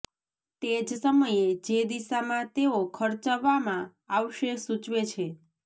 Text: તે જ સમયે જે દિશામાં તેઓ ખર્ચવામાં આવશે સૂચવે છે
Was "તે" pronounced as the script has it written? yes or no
yes